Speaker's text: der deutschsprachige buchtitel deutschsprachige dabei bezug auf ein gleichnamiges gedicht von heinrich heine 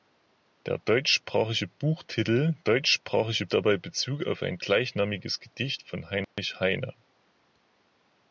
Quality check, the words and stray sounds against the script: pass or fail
fail